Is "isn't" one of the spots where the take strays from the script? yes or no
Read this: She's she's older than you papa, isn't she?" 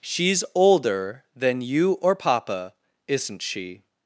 no